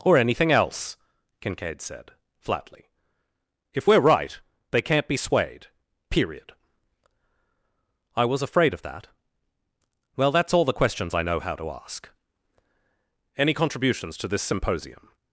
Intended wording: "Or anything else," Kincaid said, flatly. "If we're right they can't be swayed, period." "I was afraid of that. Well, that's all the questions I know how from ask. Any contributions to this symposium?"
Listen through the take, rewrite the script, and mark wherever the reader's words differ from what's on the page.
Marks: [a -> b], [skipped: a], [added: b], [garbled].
"Or anything else," Kincaid said, flatly. "If we're right they can't be swayed, period." "I was afraid of that. Well, that's all the questions I know how [from -> to] ask. Any contributions to this symposium?"